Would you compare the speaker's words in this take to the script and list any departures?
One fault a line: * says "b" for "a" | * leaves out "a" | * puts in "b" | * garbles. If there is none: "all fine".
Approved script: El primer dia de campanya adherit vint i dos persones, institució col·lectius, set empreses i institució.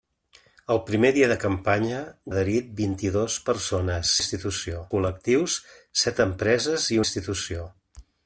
all fine